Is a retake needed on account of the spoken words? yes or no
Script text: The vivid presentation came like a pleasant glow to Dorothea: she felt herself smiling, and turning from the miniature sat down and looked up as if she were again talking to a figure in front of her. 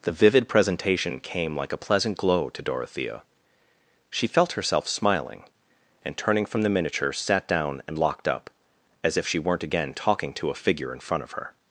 yes